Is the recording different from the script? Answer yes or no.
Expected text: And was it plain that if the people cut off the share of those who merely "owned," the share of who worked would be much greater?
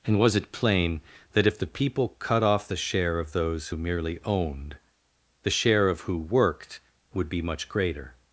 no